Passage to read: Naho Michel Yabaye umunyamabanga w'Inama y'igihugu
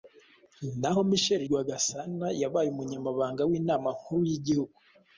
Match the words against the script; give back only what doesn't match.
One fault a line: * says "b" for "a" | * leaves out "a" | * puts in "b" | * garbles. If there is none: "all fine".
* puts in "Rwagasana"
* puts in "nkuru"